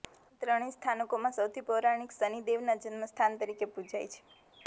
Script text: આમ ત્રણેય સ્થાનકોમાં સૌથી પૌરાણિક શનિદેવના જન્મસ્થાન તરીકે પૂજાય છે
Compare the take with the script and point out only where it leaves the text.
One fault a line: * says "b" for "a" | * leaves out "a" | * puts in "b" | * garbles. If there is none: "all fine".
all fine